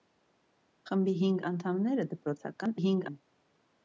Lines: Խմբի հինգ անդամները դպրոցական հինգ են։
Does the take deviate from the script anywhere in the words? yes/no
no